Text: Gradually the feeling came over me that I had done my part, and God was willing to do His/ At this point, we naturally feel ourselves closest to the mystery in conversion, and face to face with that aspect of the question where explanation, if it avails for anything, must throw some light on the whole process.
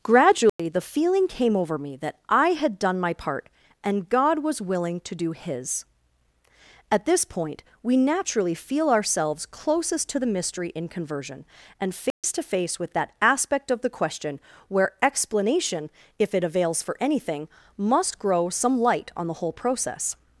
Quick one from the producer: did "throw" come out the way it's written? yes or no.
no